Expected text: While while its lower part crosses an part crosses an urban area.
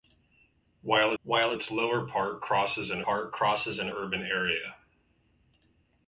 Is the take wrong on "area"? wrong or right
right